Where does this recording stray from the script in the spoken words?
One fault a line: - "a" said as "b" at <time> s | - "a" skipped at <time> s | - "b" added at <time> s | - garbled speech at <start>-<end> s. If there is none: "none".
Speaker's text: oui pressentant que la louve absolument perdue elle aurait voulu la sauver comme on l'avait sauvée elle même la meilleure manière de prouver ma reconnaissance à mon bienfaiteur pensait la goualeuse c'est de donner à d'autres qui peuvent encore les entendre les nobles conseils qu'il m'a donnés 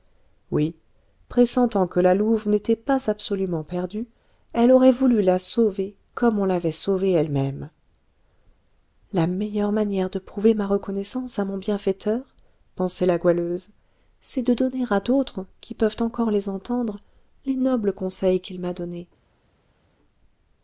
- "n'était pas" added at 2.5 s